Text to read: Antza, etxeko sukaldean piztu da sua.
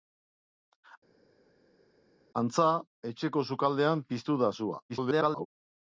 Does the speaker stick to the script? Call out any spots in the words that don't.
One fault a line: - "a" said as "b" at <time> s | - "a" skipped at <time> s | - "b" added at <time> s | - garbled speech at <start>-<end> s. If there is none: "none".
- garbled speech at 4.9-5.5 s